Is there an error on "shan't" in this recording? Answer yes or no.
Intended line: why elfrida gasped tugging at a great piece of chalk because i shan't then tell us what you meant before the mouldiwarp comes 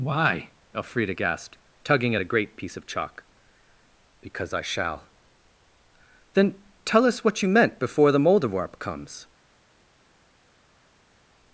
yes